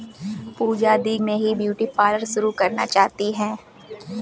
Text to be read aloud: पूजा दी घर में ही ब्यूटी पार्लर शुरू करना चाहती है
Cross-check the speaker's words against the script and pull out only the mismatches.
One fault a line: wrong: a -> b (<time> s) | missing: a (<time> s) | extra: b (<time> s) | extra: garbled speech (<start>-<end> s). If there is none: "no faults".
missing: घर (1.2 s)